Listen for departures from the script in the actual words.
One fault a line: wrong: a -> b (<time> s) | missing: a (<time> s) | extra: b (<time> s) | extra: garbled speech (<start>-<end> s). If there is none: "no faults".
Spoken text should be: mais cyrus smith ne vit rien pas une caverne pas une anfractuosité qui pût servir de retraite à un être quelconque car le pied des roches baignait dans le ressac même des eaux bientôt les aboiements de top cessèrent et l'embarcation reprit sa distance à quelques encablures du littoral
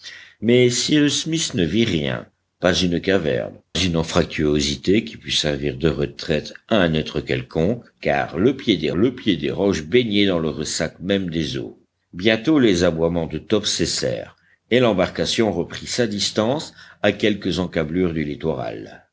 missing: pas (3.5 s)
extra: le pied des (8.9 s)